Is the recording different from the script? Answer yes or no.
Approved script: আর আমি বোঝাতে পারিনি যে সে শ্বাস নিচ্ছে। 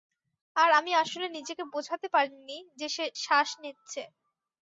yes